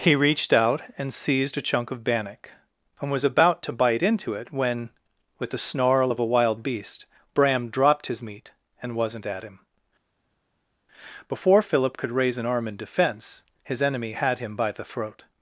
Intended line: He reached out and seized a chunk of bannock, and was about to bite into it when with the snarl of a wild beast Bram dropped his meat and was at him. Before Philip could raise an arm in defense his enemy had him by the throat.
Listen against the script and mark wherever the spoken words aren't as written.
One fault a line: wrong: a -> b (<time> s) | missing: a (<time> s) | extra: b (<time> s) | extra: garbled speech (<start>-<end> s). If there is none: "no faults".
wrong: was -> wasn't (8.9 s)